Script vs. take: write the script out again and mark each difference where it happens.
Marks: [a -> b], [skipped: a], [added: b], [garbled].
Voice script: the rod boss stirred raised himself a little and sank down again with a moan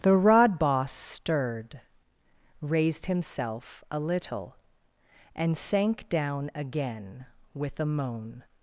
the rod boss stirred raised himself a little and sank down again with a moan